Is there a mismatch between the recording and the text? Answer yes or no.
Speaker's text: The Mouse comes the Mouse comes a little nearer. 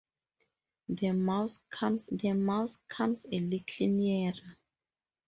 no